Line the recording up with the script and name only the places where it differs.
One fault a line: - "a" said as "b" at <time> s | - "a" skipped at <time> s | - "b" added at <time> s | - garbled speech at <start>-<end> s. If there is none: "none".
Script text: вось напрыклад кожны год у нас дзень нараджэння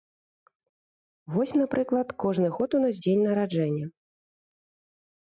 none